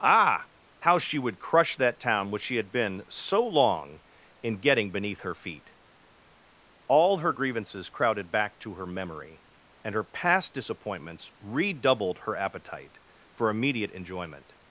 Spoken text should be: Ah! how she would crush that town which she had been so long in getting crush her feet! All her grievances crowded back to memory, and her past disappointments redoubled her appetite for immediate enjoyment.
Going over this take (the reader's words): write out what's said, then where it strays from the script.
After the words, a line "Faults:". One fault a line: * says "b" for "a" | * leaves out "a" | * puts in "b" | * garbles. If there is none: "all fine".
Ah! how she would crush that town which she had been so long in getting beneath her feet! All her grievances crowded back to her memory, and her past disappointments redoubled her appetite for immediate enjoyment.
Faults:
* says "beneath" for "crush"
* puts in "her"